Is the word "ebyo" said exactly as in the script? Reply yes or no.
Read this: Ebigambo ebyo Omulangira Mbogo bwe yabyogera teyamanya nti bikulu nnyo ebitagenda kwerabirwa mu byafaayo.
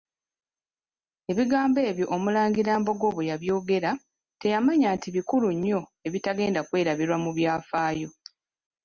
yes